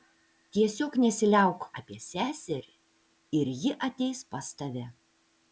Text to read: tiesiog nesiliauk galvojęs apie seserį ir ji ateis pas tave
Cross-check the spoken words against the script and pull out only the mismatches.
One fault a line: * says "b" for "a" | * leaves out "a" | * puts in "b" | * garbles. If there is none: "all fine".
* leaves out "galvojęs"